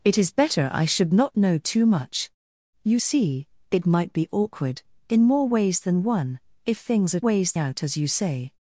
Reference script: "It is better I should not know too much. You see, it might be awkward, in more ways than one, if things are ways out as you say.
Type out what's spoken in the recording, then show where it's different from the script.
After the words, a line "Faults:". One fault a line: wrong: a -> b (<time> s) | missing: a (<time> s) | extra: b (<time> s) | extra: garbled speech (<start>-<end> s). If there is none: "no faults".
"It is better I should not know too much. You see, it might be awkward, in more ways than one, if things are ways out as you say.
Faults:
no faults